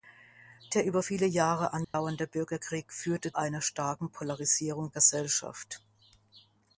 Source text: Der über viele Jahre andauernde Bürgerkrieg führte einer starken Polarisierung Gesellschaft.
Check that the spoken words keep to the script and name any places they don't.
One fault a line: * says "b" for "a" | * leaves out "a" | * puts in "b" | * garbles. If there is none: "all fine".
all fine